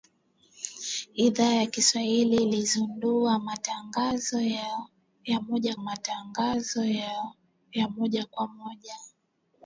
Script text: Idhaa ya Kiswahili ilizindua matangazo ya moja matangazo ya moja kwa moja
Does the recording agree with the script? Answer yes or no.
yes